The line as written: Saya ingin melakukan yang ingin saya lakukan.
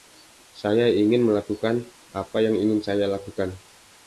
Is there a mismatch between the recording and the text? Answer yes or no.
yes